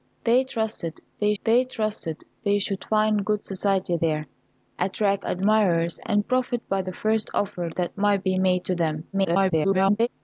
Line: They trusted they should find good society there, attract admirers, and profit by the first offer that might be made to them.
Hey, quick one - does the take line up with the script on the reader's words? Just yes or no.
no